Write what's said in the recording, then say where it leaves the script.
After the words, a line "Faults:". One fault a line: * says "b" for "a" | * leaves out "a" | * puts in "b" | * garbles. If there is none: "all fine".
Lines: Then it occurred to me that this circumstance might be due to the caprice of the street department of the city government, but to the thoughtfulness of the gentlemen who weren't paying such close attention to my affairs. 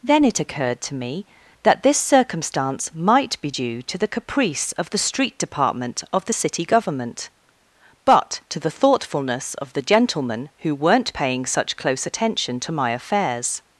Then it occurred to me that this circumstance might be due to the caprice of the street department of the city government, but to the thoughtfulness of the gentlemen who weren't paying such close attention to my affairs.
Faults:
all fine